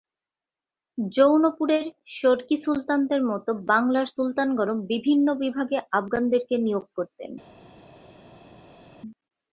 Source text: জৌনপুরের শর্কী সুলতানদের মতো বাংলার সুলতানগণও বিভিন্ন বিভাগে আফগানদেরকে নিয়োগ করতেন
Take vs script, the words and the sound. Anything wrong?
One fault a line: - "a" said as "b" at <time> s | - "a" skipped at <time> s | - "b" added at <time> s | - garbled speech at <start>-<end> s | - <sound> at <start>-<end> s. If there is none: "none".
none